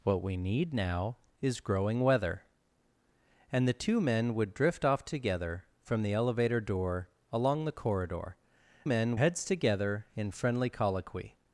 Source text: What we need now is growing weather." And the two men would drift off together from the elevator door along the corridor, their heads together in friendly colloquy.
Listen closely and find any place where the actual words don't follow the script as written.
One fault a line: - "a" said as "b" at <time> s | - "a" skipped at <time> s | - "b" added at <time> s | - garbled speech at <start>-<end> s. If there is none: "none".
- "their" said as "men" at 8.8 s